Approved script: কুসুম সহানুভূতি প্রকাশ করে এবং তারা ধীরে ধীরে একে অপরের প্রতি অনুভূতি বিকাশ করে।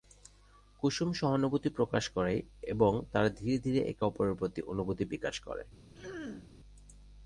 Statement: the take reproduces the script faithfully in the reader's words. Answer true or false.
true